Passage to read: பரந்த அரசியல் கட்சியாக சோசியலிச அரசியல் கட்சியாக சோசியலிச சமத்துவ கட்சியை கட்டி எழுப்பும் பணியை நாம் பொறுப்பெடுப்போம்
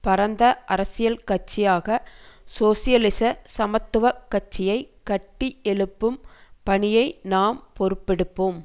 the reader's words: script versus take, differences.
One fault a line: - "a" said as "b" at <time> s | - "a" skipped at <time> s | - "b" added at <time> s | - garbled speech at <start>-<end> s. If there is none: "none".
- "அரசியல் கட்சியாக சோசியலிச" skipped at 3.2 s